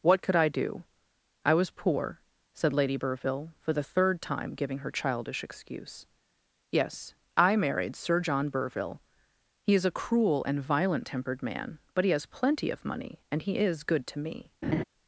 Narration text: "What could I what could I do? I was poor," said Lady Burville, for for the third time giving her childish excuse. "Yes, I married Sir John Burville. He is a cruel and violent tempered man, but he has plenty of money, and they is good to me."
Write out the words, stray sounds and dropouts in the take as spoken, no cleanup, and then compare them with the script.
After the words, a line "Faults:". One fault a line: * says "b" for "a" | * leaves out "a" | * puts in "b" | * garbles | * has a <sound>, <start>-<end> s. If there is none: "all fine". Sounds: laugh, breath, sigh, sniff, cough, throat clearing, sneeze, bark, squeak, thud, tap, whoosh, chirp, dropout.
"What could I do? I was poor," said Lady Burville, for the third time giving her childish excuse. "Yes, I married Sir John Burville. He is a cruel and violent tempered man, but he has plenty of money, and he is good to me."
Faults:
* leaves out "what could I"
* leaves out "for"
* says "he" for "they"
* has a laugh, 14.6-14.8 s